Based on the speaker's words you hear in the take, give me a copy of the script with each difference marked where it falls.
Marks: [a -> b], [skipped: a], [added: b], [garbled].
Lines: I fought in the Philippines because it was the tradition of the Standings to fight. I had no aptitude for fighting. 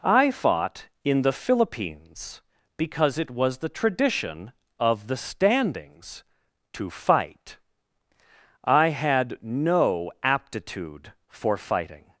I fought in the Philippines because it was the tradition of the Standings to fight. I had no aptitude for fighting.